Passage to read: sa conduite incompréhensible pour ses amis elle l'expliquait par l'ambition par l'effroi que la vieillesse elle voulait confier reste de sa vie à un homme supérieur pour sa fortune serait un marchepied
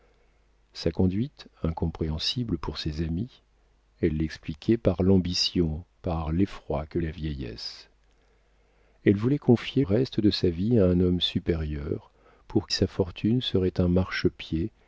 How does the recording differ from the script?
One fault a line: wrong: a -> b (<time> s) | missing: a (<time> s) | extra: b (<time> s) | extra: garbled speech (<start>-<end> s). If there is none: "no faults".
no faults